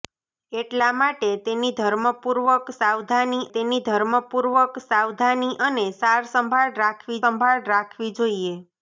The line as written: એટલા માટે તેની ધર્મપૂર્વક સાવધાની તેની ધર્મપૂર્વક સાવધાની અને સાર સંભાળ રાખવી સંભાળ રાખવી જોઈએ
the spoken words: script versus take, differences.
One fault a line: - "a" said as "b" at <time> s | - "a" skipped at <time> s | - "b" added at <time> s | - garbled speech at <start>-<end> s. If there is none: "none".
none